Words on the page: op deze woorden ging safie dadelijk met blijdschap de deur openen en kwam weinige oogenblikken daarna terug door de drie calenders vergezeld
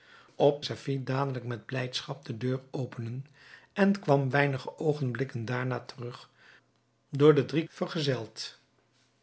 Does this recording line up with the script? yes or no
no